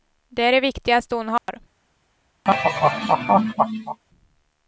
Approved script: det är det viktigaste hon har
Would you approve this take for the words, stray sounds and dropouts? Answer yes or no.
no